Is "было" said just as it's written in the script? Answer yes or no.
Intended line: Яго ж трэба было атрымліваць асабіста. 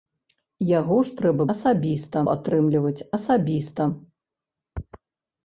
no